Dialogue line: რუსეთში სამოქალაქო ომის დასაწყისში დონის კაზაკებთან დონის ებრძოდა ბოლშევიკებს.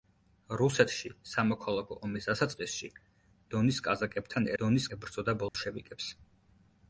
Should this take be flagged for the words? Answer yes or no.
no